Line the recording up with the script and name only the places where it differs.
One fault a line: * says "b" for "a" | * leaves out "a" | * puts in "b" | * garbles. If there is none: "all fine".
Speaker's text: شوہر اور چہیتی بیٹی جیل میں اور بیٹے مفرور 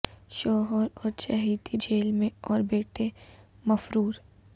* leaves out "بیٹی"